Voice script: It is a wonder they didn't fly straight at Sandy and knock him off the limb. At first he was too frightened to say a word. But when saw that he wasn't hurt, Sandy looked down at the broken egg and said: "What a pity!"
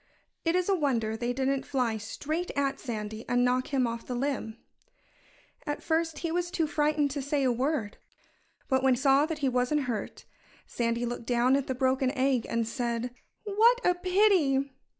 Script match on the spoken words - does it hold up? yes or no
yes